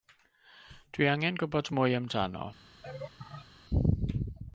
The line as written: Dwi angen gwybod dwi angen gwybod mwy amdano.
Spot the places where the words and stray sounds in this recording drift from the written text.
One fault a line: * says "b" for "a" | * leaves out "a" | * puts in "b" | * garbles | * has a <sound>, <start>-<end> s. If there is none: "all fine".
* leaves out "dwi angen gwybod"
* has a laugh, 2.8-3.5 s